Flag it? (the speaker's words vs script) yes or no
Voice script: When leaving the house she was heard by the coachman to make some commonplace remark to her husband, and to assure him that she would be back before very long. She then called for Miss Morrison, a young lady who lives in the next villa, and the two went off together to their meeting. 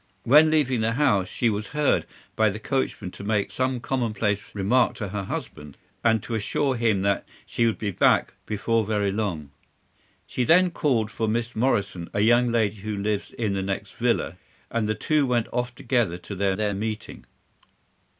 yes